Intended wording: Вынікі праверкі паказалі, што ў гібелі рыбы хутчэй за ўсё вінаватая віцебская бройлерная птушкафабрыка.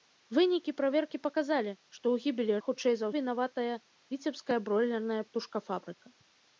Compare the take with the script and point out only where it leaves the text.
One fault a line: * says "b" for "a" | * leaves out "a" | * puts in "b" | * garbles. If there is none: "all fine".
* leaves out "рыбы"
* leaves out "ўсё"